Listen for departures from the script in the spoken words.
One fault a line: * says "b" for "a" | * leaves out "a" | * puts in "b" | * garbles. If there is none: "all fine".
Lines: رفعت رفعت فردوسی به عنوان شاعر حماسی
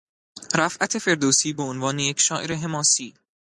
* leaves out "رفعت"
* puts in "یک"